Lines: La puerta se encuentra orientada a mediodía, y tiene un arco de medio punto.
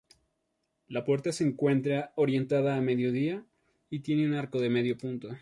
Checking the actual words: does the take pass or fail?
pass